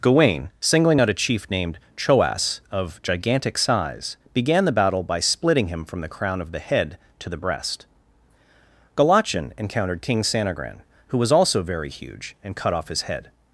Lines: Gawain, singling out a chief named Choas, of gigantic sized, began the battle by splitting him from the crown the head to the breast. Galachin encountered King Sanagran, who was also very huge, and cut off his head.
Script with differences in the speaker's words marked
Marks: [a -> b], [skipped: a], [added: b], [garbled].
Gawain, singling out a chief named Choas, of gigantic [sized, -> size] began the battle by splitting him from the crown [added: of] the head to the breast. Galachin encountered King Sanagran, who was also very huge, and cut off his head.